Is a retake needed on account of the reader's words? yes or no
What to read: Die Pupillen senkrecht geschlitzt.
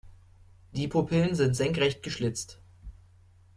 yes